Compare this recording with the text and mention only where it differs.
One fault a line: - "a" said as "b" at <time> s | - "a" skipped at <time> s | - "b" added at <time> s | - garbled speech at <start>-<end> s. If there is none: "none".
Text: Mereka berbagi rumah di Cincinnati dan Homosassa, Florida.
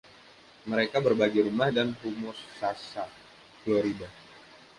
- "di Cincinnati" skipped at 1.7 s